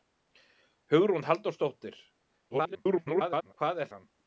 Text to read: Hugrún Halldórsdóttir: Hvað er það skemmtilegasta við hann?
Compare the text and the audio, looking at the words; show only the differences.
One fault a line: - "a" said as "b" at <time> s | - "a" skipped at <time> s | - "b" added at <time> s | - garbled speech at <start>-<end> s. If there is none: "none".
- garbled speech at 2.5-3.5 s
- "það skemmtilegasta við" skipped at 3.9 s